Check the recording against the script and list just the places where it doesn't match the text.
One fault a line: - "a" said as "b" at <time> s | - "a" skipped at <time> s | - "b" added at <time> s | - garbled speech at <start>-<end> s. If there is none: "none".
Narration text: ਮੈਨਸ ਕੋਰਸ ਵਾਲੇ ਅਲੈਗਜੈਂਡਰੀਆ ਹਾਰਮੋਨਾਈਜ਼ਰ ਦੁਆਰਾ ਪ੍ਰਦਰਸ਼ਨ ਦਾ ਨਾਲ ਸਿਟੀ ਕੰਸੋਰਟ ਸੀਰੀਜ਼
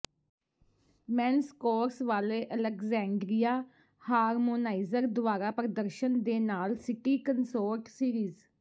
- "ਦਾ" said as "ਦੇ" at 6.2 s